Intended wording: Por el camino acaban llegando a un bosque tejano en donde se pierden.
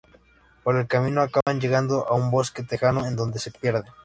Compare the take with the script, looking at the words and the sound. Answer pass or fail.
fail